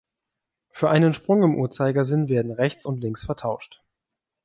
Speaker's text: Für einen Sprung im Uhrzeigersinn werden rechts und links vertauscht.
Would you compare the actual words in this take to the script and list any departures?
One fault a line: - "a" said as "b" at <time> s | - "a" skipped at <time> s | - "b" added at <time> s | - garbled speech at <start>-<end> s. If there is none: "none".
none